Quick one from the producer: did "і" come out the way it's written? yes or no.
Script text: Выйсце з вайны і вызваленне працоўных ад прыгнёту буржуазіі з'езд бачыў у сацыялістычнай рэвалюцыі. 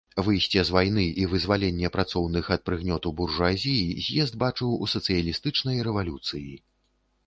yes